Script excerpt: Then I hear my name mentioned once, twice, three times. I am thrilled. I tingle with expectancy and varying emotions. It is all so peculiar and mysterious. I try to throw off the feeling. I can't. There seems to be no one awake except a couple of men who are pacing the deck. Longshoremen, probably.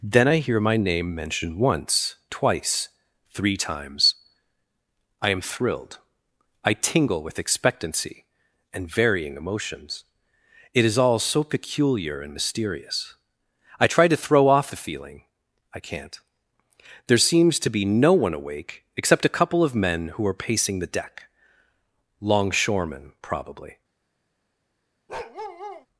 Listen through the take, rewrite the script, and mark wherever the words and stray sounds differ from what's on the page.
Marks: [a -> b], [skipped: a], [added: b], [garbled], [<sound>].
Then I hear my name mentioned once, twice, three times. I am thrilled. I tingle with expectancy and varying emotions. It is all so peculiar and mysterious. I try to throw off the feeling. I can't. There seems to be no one awake except a couple of men who are pacing the deck. Longshoremen, probably. [bark]